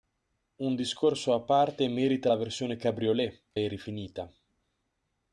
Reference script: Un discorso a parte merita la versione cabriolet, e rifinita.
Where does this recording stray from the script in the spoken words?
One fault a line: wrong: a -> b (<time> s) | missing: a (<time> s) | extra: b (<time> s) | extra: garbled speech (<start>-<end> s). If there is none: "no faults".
no faults